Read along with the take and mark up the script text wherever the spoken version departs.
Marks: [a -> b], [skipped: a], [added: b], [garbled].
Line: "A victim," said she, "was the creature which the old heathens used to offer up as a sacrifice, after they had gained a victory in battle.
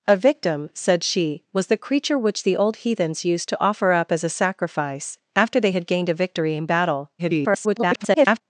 "A victim," said she, "was the creature which the old heathens used to offer up as a sacrifice, after they had gained a victory in battle. [garbled]